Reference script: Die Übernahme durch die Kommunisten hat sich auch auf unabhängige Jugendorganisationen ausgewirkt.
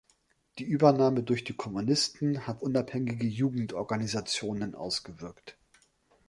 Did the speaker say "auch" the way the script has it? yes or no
no